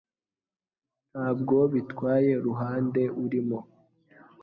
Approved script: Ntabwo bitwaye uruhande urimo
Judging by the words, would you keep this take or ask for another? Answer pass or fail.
pass